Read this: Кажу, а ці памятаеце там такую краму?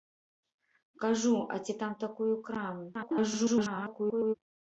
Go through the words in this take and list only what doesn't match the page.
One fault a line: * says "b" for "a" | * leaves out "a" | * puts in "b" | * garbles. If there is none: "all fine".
* leaves out "памятаеце"
* garbles